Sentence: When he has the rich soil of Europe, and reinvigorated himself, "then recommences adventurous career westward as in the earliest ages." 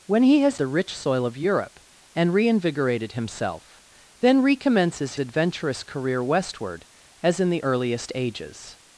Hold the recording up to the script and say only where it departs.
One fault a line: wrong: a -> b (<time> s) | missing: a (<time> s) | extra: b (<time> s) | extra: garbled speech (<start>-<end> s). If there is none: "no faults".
no faults